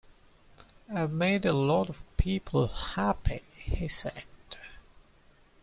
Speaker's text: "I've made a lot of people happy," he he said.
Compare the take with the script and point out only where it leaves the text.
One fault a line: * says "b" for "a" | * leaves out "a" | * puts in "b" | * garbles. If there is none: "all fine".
* leaves out "he"